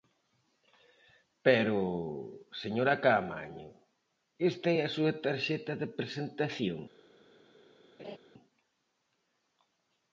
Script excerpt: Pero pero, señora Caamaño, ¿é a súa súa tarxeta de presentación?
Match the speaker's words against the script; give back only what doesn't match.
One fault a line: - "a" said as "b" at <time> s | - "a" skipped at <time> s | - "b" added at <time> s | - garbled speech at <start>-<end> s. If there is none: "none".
- "pero" skipped at 1.8 s
- "esta" added at 4.5 s
- "súa" skipped at 5.1 s